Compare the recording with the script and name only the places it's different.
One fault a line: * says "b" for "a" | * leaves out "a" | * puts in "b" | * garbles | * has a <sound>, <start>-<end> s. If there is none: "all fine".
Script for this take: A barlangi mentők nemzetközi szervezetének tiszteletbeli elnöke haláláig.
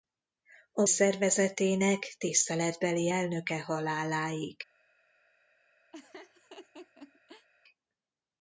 * leaves out "barlangi mentők nemzetközi"
* has a laugh, 5.9-7.5 s